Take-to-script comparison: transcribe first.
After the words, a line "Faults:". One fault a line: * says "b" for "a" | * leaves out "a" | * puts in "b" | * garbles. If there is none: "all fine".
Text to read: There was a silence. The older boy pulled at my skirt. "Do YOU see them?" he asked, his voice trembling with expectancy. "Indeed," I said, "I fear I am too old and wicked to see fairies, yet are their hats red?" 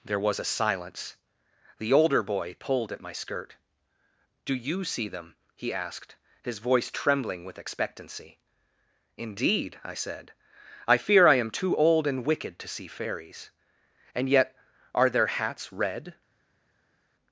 There was a silence. The older boy pulled at my skirt. "Do YOU see them?" he asked, his voice trembling with expectancy. "Indeed," I said, "I fear I am too old and wicked to see fairies, and yet are their hats red?"
Faults:
* puts in "and"